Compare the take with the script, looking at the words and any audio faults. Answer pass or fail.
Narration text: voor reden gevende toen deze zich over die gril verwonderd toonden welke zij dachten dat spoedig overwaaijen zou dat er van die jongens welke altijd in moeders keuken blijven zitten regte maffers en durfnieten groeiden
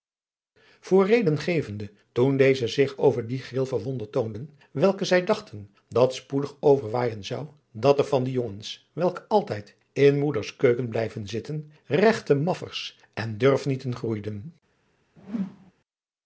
fail